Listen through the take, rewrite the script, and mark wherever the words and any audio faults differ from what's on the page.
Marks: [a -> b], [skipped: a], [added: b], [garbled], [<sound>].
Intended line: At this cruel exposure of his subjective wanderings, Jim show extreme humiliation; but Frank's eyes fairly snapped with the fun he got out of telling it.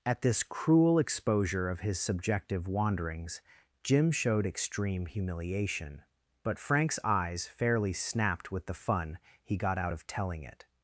At this cruel exposure of his subjective wanderings, Jim [show -> showed] extreme humiliation; but Frank's eyes fairly snapped with the fun he got out of telling it.